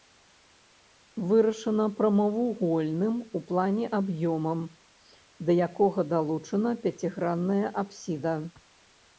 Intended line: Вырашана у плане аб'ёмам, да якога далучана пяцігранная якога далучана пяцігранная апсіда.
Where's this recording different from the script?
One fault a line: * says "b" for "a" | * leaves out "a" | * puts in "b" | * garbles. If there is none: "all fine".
* puts in "прамавугольным"
* leaves out "якога далучана пяцігранная"